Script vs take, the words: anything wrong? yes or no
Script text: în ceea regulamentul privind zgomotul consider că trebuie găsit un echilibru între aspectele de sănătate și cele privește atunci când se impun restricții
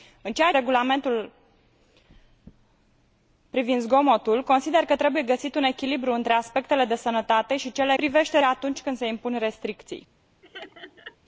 no